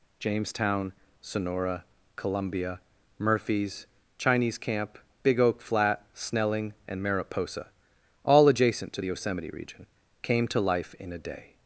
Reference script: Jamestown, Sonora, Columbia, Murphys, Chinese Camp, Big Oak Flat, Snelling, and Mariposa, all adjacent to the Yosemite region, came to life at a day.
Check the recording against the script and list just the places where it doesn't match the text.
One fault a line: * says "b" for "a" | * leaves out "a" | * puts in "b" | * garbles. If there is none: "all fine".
* says "in" for "at"